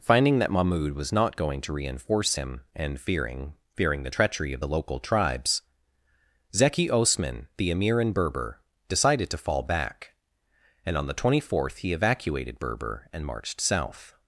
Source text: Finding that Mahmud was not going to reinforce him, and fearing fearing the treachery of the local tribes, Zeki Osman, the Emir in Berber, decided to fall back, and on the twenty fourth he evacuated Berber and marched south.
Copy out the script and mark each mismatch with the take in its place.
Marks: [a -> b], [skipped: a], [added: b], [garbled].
Finding that Mahmud was not going to reinforce him, and fearing fearing the treachery of the local tribes, Zeki Osman, the Emir in Berber, decided to fall back, and on the twenty fourth he evacuated Berber and marched south.